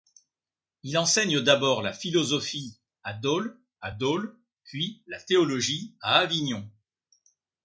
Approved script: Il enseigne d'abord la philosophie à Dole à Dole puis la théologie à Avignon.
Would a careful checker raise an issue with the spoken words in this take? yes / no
no